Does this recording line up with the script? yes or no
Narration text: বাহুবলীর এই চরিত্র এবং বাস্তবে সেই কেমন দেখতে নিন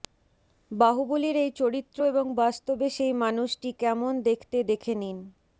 no